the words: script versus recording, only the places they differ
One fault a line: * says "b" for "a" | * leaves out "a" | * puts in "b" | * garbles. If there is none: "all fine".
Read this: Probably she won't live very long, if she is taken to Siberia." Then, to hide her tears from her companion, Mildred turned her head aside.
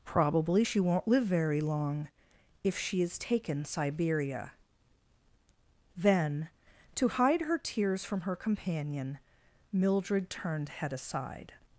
* leaves out "to"
* leaves out "her"